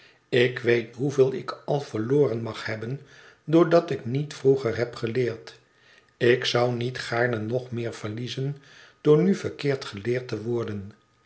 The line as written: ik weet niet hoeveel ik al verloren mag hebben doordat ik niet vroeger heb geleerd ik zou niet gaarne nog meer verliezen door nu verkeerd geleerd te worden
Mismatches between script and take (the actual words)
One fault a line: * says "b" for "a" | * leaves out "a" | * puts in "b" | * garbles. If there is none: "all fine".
* leaves out "niet"